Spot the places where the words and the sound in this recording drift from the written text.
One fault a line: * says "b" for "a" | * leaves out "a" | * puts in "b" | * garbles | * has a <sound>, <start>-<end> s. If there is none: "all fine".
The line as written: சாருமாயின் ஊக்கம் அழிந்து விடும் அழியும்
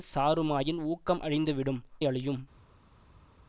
all fine